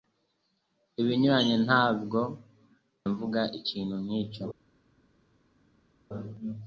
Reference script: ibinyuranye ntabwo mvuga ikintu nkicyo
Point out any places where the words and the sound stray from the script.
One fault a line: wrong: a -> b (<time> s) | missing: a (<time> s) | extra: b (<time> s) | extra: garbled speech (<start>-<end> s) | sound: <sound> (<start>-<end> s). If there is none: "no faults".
no faults